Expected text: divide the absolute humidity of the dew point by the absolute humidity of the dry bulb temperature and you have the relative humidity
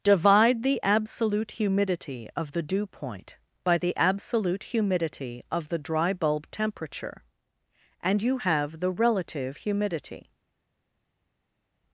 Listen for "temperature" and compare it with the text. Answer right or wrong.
right